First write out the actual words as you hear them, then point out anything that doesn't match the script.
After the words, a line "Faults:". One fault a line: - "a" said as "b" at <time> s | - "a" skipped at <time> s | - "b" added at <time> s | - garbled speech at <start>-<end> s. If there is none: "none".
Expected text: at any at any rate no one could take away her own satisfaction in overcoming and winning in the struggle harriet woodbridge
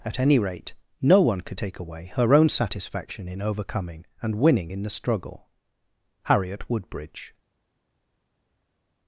at any rate no one could take away her own satisfaction in overcoming and winning in the struggle harriet woodbridge
Faults:
- "at any" skipped at 0.4 s